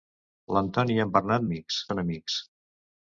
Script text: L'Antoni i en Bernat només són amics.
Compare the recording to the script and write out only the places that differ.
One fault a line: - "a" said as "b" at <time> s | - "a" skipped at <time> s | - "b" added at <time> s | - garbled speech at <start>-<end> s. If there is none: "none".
- "només" said as "amics" at 1.5 s